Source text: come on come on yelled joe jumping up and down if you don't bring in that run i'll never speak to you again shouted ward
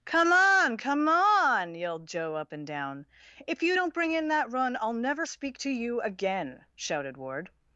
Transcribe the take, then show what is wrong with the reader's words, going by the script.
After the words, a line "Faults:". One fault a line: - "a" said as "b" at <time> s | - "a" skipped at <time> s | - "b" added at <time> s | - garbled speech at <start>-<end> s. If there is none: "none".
come on come on yelled joe up and down if you don't bring in that run i'll never speak to you again shouted ward
Faults:
- "jumping" skipped at 2.3 s